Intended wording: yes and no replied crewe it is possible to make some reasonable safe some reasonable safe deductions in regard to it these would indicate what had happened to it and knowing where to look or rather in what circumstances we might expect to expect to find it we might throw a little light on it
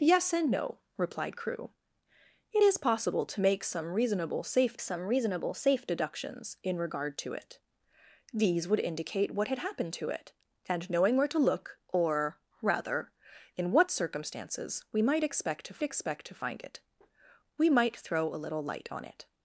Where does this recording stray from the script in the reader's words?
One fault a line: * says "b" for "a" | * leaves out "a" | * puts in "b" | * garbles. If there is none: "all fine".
all fine